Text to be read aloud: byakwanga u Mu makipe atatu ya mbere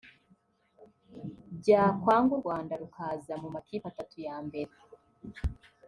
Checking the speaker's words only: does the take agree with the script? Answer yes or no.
no